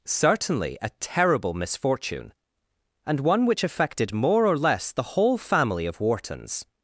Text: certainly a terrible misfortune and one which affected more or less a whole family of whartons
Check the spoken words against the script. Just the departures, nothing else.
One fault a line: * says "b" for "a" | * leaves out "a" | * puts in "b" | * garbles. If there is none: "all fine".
* says "the" for "a"